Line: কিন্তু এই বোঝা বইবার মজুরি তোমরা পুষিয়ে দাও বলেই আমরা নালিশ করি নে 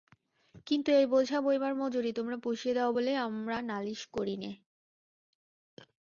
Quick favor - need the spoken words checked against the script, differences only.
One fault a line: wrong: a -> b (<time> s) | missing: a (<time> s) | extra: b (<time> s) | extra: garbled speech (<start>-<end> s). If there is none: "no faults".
no faults